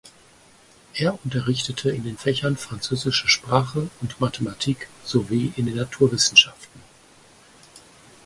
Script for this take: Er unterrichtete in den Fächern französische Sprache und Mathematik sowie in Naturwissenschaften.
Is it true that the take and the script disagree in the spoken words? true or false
true